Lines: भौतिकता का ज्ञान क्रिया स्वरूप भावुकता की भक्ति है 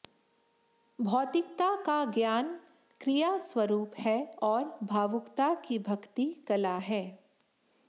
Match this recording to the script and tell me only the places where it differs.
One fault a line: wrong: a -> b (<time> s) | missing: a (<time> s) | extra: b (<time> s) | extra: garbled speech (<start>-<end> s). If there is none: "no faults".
extra: है और (4.0 s)
extra: कला (6.5 s)